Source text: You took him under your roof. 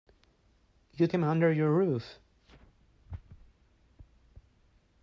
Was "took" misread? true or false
true